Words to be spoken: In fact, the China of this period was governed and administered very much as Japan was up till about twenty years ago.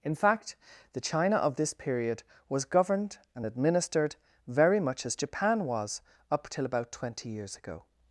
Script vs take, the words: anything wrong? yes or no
no